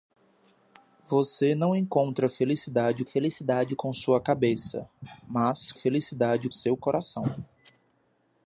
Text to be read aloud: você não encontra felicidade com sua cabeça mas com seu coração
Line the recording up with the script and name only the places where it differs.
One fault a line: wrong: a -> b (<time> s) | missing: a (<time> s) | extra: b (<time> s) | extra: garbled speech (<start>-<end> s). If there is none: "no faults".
extra: felicidade (3.0 s)
wrong: com -> felicidade (5.7 s)